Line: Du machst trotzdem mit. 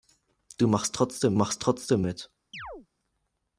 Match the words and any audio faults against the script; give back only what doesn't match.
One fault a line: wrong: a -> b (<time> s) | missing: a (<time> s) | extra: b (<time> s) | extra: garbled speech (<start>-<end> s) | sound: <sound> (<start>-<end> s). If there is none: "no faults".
extra: machst trotzdem (1.3 s)
sound: chirp (2.5-2.9 s)